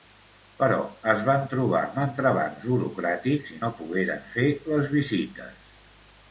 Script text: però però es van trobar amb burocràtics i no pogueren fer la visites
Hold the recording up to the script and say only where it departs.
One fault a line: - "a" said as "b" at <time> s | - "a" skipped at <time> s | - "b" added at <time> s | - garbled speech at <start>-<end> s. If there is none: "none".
- "però" skipped at 0.8 s
- "entrebancs" added at 2.0 s
- "la" said as "les" at 4.7 s